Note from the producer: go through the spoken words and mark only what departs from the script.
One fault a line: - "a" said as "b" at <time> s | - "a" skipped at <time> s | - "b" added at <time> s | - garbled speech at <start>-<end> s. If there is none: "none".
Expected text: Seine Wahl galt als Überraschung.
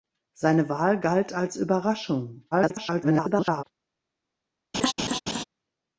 - garbled speech at 2.5-3.6 s